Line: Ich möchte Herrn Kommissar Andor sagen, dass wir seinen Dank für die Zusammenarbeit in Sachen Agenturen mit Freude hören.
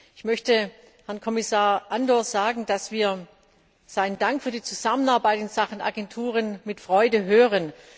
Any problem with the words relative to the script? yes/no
no